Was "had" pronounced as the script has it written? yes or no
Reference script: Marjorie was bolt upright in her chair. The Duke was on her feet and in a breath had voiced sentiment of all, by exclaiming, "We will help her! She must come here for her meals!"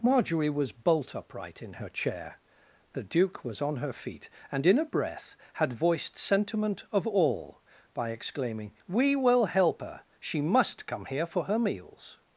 yes